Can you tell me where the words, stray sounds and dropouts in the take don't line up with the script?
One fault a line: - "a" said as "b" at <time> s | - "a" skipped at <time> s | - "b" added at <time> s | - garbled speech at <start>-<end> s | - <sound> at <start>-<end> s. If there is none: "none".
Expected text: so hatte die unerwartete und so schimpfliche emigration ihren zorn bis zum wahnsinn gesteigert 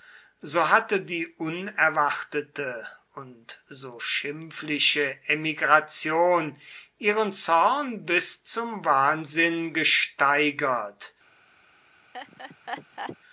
- laugh at 12.1-13.2 s